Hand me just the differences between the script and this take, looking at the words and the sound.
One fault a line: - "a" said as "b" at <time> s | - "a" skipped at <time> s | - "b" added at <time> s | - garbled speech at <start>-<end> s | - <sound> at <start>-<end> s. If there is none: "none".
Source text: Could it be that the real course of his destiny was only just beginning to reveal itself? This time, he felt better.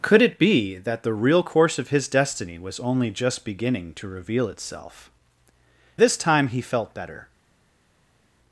none